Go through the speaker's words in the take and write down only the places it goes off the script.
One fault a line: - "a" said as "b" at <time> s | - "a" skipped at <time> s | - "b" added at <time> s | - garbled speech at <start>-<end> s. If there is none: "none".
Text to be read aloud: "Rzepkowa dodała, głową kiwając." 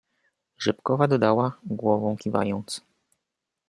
none